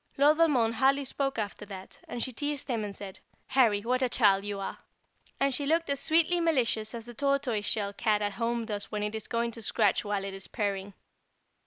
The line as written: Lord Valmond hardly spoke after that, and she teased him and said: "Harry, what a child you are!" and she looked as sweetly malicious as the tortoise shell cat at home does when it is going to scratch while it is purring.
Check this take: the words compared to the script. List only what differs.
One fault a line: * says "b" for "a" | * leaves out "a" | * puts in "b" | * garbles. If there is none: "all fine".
all fine